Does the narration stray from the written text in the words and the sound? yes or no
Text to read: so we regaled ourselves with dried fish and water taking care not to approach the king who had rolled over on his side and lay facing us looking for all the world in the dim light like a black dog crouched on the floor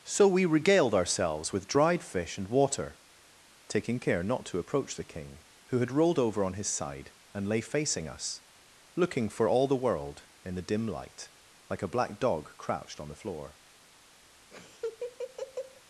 yes